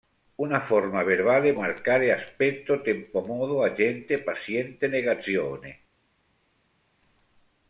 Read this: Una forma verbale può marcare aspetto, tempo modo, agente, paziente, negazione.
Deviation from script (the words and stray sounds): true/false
true